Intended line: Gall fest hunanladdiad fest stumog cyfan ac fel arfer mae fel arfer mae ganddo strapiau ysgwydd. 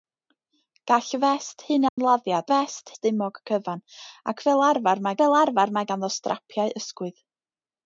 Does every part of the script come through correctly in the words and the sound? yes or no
no